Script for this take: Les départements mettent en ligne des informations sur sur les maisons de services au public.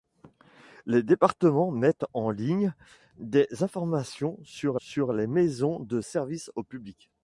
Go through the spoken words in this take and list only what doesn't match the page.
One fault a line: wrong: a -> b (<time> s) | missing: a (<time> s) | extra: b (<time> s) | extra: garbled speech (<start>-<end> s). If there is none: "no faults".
no faults